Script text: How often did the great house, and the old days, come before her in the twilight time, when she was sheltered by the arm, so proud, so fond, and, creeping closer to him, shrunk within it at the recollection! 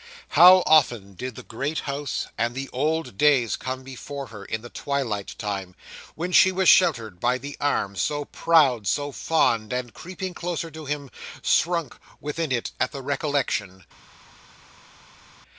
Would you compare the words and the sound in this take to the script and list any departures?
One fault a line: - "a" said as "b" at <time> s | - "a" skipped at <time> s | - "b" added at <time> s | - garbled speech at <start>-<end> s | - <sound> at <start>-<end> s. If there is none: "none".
none